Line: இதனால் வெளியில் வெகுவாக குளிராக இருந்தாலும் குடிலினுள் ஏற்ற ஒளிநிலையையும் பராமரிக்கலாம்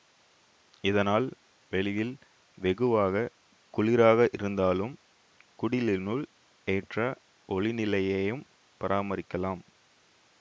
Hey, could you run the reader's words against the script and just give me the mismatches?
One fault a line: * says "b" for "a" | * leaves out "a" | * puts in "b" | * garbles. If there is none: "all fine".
all fine